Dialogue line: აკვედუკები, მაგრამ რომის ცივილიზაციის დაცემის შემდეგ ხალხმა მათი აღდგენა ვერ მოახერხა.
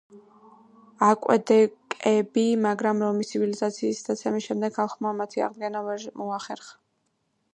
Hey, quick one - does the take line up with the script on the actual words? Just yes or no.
yes